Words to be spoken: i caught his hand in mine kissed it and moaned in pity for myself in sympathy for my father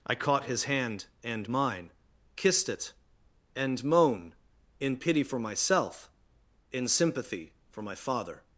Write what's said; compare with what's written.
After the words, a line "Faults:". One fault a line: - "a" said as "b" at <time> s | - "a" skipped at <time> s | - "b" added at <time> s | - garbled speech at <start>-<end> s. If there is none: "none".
i caught his hand and mine kissed it and moan in pity for myself in sympathy for my father
Faults:
- "in" said as "and" at 1.2 s
- "moaned" said as "moan" at 3.8 s